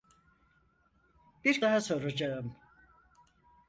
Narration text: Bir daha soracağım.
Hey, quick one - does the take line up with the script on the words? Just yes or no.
yes